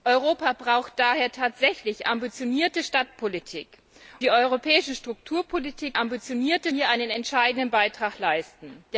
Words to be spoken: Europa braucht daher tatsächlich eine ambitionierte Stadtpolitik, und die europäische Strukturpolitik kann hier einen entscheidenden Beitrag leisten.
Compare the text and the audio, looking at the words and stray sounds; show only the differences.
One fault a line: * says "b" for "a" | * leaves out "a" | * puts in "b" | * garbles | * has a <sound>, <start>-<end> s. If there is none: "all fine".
* leaves out "eine"
* leaves out "und"
* says "ambitionierte" for "kann"